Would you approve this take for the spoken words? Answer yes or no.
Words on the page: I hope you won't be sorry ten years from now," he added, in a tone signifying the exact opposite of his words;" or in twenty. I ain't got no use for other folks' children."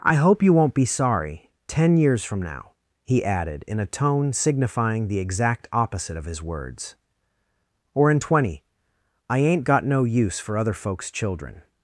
yes